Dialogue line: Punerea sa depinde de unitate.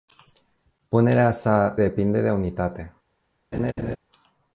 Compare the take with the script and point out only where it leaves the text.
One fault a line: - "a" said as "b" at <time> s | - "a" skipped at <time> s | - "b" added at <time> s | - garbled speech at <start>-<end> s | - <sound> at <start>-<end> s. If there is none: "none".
- laugh at 3.5-4.0 s